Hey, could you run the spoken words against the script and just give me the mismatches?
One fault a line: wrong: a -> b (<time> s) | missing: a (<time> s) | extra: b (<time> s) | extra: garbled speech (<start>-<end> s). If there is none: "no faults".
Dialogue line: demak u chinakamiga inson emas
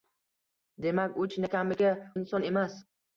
no faults